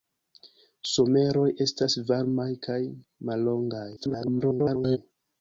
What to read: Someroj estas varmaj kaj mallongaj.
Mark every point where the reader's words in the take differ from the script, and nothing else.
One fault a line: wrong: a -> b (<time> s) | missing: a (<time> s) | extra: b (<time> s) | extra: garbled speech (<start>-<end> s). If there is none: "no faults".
extra: garbled speech (4.0-5.0 s)